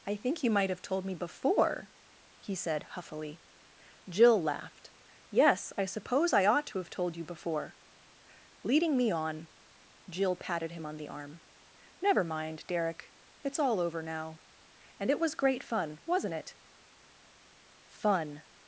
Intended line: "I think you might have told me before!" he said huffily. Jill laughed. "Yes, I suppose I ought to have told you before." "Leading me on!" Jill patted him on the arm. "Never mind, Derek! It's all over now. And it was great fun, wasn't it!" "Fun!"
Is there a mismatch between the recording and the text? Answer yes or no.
no